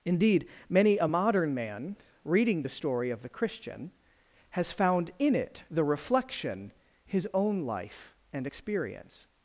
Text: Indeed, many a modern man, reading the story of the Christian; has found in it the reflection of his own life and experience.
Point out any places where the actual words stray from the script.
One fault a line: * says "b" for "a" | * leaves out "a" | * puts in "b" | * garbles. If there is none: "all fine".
* leaves out "of"